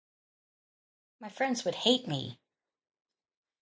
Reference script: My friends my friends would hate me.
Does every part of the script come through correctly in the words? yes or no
no